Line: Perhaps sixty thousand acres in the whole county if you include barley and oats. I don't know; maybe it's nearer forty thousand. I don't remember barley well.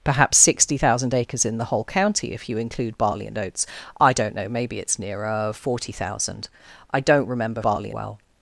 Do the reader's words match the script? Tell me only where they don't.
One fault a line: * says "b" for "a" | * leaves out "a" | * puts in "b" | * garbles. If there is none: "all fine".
all fine